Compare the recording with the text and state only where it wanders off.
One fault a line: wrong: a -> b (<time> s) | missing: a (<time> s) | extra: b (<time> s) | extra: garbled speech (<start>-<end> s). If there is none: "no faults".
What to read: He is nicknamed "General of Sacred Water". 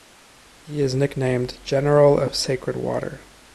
no faults